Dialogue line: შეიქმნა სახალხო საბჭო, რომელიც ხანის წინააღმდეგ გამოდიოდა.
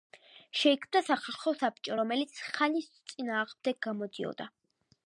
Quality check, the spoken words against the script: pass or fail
pass